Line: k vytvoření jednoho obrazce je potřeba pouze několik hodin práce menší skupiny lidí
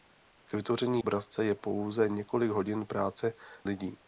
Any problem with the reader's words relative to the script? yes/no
yes